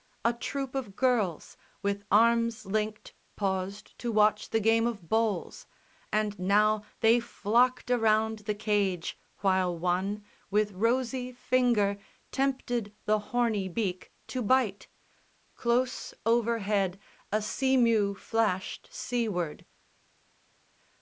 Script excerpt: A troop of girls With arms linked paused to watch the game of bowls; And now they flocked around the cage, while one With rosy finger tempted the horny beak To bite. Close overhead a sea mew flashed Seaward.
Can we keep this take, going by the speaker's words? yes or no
yes